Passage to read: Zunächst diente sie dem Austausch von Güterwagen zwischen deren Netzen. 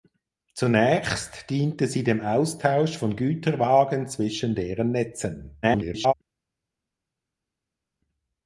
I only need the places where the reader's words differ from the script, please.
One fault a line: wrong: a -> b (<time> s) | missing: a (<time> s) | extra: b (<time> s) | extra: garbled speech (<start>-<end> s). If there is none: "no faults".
extra: garbled speech (5.6-6.1 s)